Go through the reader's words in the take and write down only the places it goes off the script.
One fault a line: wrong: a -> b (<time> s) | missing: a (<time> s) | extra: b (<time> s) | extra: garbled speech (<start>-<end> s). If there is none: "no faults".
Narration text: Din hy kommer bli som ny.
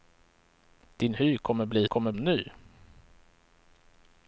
wrong: som -> kommer (1.8 s)